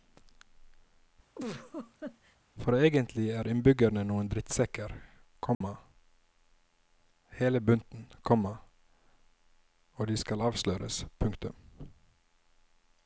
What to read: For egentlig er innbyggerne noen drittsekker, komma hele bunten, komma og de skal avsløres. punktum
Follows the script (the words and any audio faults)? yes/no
no